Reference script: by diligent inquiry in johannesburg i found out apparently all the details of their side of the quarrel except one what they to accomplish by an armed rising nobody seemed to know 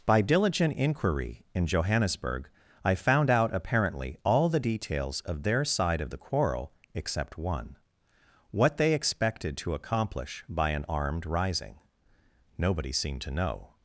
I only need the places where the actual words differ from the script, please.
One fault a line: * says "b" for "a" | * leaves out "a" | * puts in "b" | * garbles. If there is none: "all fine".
* puts in "expected"